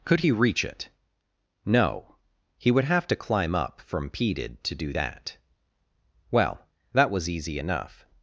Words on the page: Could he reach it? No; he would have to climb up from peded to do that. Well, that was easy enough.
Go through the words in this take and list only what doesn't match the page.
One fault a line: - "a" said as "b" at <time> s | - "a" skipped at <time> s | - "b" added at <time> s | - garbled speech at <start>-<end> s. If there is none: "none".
none